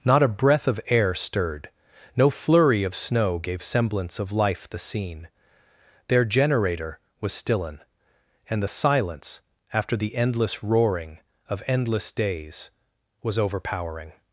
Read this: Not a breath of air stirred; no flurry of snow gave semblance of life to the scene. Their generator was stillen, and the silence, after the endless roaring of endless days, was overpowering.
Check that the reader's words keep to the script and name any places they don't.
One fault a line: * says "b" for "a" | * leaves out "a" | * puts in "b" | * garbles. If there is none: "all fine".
* leaves out "to"